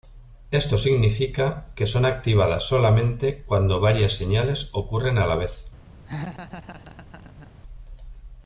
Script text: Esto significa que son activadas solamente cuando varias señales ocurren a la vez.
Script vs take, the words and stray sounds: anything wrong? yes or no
yes